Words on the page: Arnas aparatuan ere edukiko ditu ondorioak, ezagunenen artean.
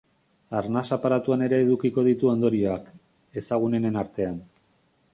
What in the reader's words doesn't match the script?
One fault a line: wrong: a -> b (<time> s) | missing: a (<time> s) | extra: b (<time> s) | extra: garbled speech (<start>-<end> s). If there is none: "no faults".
no faults